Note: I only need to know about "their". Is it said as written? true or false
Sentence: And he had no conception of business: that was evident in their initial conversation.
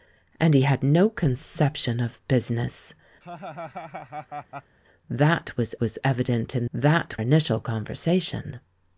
false